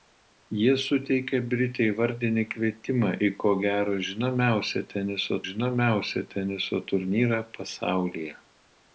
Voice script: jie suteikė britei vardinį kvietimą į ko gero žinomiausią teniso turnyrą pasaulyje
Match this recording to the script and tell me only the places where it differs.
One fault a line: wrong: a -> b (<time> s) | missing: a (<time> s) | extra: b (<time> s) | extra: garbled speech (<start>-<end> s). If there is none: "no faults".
extra: žinomiausią teniso (5.5 s)